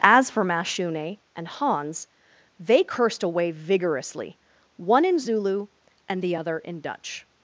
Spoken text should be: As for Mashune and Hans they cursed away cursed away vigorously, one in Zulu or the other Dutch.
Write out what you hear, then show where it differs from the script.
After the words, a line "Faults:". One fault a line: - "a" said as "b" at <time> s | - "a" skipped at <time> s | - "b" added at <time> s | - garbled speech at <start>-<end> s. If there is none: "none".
As for Mashune and Hans they cursed away vigorously, one in Zulu and the other in Dutch.
Faults:
- "cursed away" skipped at 3.5 s
- "or" said as "and" at 6.1 s
- "in" added at 6.6 s